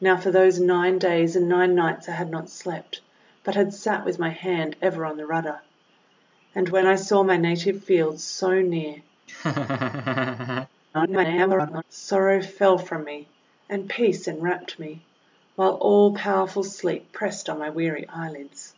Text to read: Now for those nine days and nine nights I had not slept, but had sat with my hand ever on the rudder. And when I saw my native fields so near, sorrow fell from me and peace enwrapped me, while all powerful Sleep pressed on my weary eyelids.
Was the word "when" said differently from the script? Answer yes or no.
no